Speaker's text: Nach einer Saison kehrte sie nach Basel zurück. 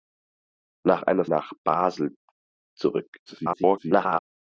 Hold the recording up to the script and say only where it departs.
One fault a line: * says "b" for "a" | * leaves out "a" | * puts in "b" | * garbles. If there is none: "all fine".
* leaves out "Saison kehrte sie"
* garbles